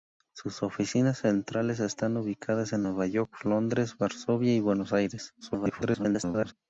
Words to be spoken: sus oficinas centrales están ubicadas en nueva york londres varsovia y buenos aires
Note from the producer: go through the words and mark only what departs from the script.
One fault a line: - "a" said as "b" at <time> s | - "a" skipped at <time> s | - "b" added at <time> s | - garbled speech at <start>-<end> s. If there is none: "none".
- garbled speech at 5.4-6.5 s